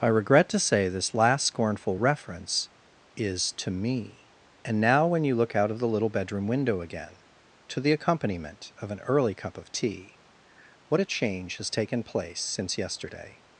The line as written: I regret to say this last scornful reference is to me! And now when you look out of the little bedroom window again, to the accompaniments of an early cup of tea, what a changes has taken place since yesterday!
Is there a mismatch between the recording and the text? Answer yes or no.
yes